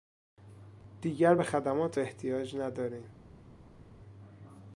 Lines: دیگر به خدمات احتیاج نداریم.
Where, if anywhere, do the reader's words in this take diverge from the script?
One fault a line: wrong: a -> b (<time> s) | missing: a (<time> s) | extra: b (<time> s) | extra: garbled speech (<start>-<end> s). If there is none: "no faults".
no faults